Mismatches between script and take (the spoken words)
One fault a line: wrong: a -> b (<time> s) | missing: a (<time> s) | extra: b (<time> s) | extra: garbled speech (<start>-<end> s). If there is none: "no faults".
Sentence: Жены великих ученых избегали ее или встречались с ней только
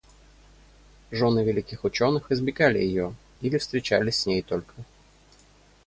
no faults